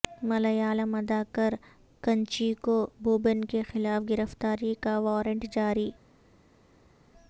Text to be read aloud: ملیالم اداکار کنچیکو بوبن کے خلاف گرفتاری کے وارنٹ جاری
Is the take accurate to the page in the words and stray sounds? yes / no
no